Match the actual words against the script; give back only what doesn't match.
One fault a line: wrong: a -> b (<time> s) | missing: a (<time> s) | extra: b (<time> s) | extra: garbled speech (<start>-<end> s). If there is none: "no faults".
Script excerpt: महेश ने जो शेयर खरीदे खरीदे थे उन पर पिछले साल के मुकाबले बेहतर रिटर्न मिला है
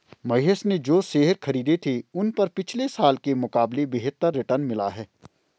missing: खरीदे (1.8 s)